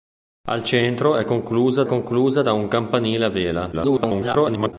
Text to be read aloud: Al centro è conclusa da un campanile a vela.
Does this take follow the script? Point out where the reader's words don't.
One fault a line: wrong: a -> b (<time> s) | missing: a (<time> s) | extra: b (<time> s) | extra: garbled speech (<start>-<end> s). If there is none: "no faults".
extra: conclusa (1.9 s)
extra: garbled speech (3.7-4.7 s)